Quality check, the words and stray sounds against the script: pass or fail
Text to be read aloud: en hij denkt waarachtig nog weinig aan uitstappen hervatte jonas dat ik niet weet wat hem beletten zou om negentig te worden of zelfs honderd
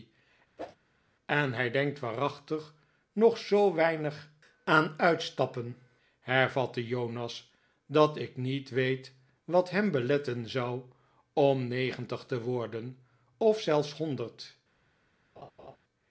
fail